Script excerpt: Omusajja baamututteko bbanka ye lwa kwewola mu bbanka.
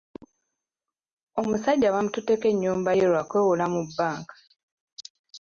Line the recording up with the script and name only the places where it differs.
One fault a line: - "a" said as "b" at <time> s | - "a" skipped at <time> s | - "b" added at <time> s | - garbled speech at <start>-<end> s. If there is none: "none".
- "bbanka" said as "ennyumba" at 2.5 s